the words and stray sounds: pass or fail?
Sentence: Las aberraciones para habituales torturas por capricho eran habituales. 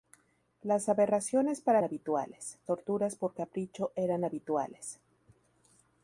pass